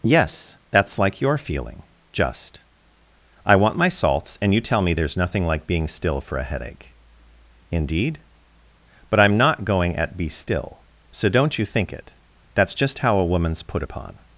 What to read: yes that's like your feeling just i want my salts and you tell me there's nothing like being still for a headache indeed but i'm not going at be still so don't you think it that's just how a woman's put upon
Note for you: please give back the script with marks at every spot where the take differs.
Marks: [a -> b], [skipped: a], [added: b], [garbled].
yes that's like your feeling just i want my salts and you tell me there's nothing like being still for a headache indeed but i'm not going at be still so don't you think it that's just how a woman's put upon